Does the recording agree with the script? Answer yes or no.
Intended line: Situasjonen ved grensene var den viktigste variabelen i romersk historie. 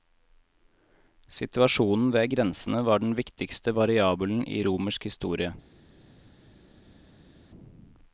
yes